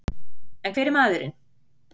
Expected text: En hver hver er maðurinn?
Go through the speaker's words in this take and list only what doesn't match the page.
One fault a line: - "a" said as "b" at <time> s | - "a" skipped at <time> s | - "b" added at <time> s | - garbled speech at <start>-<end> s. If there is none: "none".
- "hver" skipped at 0.9 s